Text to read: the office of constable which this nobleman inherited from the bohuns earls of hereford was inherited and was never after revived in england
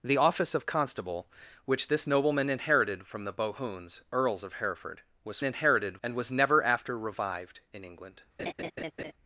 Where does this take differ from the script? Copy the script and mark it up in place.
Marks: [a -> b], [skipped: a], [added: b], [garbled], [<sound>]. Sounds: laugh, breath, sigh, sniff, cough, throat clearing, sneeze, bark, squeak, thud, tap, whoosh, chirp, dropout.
the office of constable which this nobleman inherited from the bohuns earls of hereford was inherited and was never after revived in england [laugh]